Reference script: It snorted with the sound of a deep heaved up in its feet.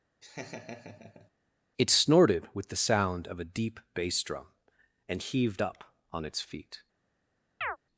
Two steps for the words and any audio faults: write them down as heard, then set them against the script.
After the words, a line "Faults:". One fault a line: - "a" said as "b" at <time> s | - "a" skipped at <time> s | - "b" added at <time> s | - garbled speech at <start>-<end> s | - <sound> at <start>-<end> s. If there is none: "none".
It snorted with the sound of a deep bass drum, and heaved up on its feet.
Faults:
- laugh at 0.2-1.3 s
- "bass drum and" added at 3.9 s
- "in" said as "on" at 6.1 s
- chirp at 7.6-7.8 s